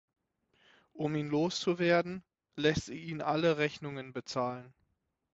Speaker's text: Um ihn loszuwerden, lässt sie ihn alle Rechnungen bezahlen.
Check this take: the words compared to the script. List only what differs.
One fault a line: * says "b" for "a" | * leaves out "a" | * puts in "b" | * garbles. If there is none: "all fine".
all fine